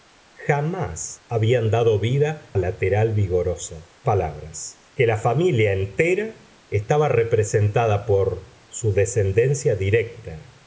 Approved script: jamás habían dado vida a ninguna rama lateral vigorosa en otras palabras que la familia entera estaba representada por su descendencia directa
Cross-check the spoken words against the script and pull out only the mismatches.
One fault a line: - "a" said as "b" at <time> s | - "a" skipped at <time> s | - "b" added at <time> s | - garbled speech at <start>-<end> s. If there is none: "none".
- "a ninguna rama" skipped at 2.5 s
- "en otras" skipped at 3.9 s